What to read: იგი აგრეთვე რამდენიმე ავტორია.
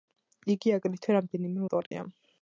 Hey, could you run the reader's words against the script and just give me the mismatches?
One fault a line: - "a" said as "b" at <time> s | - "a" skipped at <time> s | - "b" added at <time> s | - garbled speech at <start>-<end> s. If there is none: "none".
none